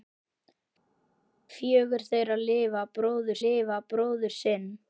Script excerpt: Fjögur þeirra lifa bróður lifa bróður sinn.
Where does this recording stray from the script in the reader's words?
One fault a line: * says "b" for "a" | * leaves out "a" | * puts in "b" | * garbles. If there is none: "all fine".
all fine